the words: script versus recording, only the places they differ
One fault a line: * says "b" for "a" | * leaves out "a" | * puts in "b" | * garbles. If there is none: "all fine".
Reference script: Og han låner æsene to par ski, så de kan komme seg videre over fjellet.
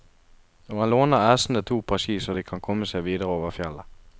all fine